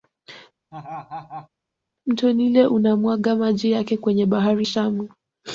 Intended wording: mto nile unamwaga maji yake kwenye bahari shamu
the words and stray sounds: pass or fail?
fail